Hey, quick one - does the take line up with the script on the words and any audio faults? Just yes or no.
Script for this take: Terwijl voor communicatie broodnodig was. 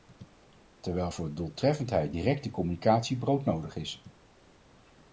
no